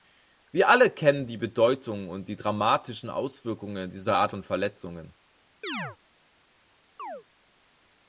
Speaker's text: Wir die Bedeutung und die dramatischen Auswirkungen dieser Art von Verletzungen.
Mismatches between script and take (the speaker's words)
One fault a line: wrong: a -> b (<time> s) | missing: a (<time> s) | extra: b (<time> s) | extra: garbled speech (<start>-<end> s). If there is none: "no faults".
extra: alle kennen (0.7 s)